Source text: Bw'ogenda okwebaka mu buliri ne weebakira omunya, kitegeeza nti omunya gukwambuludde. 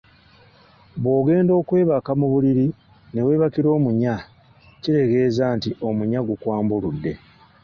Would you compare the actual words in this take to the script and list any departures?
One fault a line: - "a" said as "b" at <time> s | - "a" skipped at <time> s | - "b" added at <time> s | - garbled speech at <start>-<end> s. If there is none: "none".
none